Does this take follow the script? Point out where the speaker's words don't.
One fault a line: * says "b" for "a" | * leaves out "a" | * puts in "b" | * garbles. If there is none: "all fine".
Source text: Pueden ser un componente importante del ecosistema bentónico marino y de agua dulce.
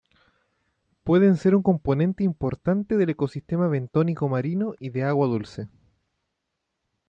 all fine